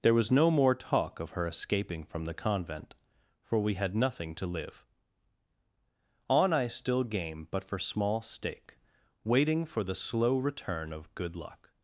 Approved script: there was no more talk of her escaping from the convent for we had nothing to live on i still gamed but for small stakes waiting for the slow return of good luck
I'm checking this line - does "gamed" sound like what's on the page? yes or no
no